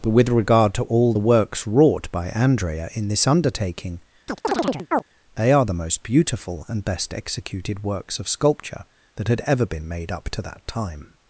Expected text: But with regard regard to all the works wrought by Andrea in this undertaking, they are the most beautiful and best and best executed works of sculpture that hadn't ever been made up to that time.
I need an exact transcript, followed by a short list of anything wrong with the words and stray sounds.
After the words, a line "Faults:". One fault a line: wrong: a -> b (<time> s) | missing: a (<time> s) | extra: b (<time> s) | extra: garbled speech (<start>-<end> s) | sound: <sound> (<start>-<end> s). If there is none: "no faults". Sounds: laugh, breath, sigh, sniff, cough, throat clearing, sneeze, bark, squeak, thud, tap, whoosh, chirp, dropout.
But with regard to all the works wrought by Andrea in this undertaking, they are the most beautiful and best executed works of sculpture that had ever been made up to that time.
Faults:
missing: regard (0.7 s)
sound: chirp (4.3-5.0 s)
missing: and best (7.1 s)
wrong: hadn't -> had (9.3 s)